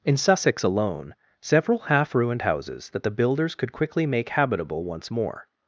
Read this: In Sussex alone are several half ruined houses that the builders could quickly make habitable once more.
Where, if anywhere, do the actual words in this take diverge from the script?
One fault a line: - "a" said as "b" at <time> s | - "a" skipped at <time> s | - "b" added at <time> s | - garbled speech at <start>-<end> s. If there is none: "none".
- "are" skipped at 1.1 s